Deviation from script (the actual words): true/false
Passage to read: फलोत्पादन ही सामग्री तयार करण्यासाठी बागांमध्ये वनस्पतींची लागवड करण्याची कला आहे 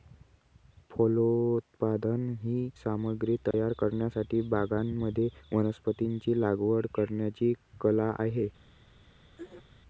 false